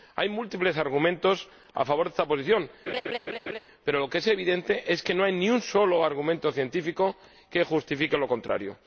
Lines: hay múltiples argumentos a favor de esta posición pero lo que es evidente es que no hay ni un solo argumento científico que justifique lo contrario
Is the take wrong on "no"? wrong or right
right